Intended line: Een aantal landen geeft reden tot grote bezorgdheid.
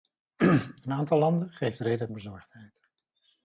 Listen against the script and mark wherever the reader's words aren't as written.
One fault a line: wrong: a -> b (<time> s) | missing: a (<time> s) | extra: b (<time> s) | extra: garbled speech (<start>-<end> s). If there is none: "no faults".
missing: tot grote (2.1 s)